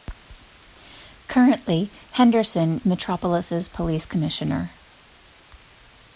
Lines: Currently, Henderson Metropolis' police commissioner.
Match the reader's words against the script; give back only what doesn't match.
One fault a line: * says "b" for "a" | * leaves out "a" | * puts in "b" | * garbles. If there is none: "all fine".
all fine